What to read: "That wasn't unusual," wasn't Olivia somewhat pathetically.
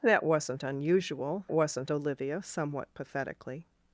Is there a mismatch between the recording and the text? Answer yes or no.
no